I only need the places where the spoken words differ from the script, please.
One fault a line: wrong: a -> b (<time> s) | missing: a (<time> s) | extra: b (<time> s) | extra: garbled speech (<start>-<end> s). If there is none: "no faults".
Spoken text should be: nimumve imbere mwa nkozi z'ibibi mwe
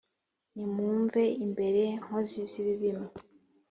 missing: mwa (1.8 s)